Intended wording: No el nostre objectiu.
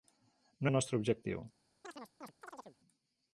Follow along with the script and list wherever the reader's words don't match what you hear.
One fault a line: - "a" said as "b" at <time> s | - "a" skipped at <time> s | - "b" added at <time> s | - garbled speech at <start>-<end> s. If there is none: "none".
none